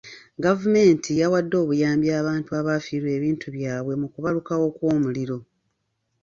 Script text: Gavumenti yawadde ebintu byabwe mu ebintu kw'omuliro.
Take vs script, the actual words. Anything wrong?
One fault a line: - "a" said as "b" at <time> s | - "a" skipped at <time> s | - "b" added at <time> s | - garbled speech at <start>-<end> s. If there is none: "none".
- "obuyambi abantu abaafiirwa" added at 1.6 s
- "ebintu" said as "kubalukawo" at 4.1 s